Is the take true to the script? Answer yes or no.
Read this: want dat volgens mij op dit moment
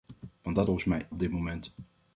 yes